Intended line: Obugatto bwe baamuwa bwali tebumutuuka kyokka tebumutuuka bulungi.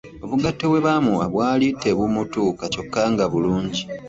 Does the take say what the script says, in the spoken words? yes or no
no